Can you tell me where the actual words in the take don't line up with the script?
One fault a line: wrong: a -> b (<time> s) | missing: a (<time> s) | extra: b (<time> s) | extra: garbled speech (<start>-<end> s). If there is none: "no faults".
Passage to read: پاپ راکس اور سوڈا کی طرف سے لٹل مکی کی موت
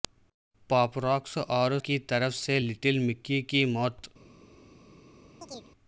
missing: سوڈا (1.8 s)